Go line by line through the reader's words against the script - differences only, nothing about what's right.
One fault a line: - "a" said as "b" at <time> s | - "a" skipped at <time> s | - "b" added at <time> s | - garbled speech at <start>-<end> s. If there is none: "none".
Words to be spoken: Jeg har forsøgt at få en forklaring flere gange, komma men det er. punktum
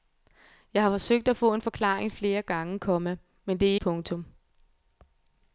none